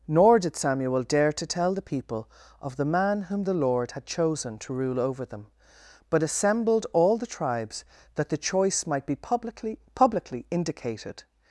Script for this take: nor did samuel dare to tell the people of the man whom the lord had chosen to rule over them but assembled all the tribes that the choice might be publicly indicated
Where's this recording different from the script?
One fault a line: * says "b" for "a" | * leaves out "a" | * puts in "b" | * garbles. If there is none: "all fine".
* puts in "publicly"